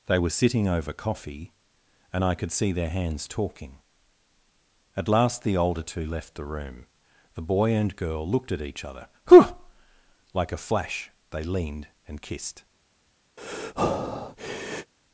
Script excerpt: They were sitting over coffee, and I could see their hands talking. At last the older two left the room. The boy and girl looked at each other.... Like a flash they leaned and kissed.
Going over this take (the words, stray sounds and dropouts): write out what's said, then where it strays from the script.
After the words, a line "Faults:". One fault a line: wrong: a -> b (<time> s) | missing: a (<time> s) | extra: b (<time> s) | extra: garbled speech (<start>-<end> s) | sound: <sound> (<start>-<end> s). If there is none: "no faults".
They were sitting over coffee, and I could see their hands talking. At last the older two left the room. The boy and girl looked at each other.... whew Like a flash they leaned and kissed.
Faults:
extra: whew (9.3 s)
sound: breath (13.4-14.9 s)